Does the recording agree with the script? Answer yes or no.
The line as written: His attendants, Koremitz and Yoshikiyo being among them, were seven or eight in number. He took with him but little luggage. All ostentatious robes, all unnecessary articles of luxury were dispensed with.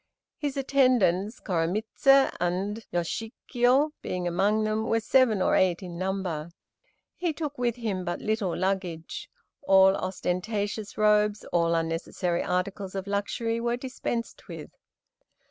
yes